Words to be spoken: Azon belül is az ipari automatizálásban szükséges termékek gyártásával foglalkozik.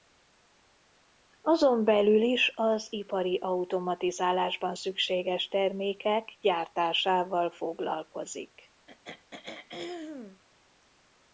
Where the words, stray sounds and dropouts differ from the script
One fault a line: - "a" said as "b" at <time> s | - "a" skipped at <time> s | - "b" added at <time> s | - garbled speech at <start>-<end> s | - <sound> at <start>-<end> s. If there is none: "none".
- throat clearing at 8.9-10.4 s